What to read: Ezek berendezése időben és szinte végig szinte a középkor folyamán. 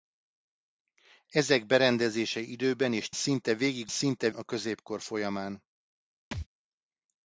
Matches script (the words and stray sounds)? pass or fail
fail